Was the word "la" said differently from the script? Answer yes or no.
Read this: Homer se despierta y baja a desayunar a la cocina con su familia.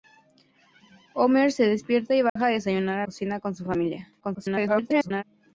yes